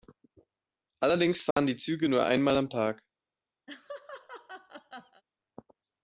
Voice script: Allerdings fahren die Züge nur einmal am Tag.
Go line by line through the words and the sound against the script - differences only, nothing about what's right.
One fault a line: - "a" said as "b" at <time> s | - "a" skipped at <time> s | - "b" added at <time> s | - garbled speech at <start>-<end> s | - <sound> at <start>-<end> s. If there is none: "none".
- dropout at 1.5-1.6 s
- laugh at 3.7-5.2 s